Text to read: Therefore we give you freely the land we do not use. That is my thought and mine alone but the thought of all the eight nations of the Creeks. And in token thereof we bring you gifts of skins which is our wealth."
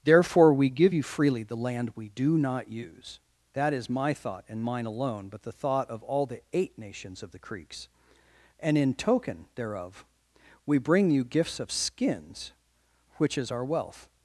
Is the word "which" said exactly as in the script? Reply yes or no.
yes